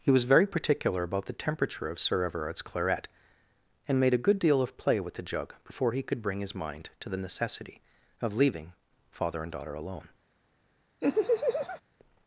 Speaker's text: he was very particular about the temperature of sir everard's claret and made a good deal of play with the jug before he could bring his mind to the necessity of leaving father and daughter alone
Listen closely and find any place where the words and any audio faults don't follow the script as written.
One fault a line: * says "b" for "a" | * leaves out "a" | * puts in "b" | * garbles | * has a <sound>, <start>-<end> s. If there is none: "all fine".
* has a laugh, 11.0-11.8 s